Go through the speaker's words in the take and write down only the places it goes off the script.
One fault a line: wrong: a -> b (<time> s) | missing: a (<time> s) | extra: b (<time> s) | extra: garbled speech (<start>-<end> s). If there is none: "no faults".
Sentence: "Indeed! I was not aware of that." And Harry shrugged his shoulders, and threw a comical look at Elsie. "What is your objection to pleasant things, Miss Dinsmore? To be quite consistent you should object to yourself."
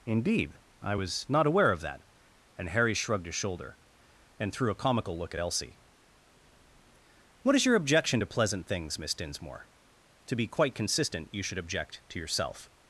wrong: shoulders -> shoulder (3.4 s)